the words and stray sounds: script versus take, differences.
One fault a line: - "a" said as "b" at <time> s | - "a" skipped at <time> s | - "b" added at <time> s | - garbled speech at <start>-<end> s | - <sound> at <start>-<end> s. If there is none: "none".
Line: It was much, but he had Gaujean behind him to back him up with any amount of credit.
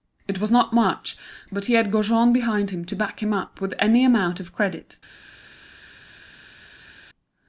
- "not" added at 0.5 s